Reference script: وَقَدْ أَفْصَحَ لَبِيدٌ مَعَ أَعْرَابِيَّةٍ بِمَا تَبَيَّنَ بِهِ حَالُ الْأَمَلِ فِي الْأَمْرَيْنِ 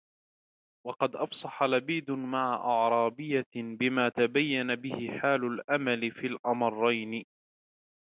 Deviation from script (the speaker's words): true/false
false